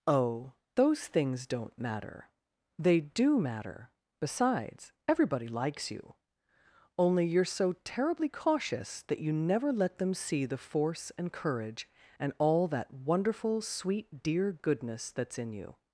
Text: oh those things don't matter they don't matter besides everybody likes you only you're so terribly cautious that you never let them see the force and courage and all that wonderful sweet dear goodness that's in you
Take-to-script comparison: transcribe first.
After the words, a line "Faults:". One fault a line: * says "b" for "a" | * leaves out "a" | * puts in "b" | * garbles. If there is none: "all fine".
oh those things don't matter they do matter besides everybody likes you only you're so terribly cautious that you never let them see the force and courage and all that wonderful sweet dear goodness that's in you
Faults:
* says "do" for "don't"